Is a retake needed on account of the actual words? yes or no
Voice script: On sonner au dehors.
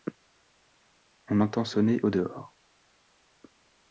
yes